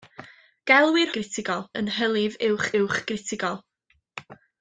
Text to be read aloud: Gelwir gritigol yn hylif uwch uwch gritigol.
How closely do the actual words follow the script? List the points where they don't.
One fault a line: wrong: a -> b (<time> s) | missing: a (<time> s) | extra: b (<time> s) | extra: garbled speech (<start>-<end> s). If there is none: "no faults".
no faults